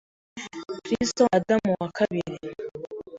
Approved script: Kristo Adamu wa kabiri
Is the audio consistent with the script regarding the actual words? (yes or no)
yes